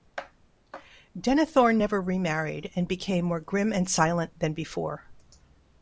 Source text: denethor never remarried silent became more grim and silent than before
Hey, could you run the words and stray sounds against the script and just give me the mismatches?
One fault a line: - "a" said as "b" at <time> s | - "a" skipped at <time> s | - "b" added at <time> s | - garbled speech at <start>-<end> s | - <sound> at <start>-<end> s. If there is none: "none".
- "silent" said as "and" at 2.7 s